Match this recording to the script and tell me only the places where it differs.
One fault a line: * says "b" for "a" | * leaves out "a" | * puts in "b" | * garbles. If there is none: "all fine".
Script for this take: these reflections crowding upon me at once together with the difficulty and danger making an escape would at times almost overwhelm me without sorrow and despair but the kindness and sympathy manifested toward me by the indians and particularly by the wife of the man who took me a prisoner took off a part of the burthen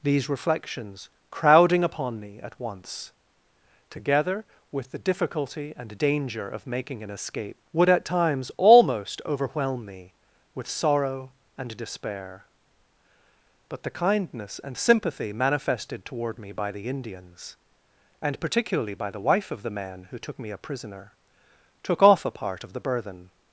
* puts in "of"
* says "with" for "without"